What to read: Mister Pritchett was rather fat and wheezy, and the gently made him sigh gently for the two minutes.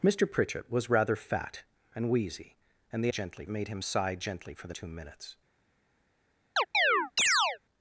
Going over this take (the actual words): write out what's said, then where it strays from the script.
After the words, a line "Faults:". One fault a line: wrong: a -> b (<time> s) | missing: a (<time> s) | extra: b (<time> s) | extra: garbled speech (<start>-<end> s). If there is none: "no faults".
Mister Pritchett was rather fat and wheezy, and the gently made him sigh gently for the two minutes.
Faults:
no faults